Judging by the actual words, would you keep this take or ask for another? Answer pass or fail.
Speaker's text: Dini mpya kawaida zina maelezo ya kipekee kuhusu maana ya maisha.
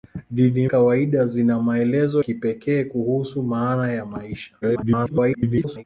fail